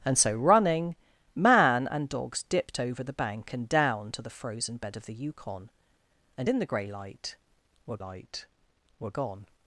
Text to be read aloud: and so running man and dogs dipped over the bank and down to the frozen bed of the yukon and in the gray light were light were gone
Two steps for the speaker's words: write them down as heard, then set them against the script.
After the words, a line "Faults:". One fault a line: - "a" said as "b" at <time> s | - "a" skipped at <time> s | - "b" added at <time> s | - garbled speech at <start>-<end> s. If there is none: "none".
and so running man and dogs dipped over the bank and down to the frozen bed of the yukon and in the gray light were light were gone
Faults:
none